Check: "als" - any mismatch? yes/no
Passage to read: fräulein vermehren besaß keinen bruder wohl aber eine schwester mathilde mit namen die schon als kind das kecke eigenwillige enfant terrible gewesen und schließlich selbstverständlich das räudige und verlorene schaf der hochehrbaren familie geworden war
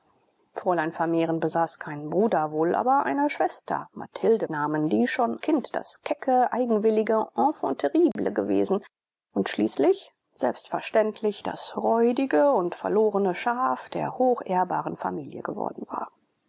yes